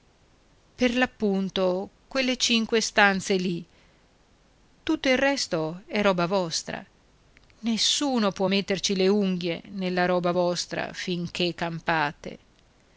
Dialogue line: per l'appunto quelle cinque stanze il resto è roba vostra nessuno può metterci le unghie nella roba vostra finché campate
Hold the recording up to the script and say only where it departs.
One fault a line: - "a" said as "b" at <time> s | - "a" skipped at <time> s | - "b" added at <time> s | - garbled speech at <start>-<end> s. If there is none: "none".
- "lì tutto" added at 3.4 s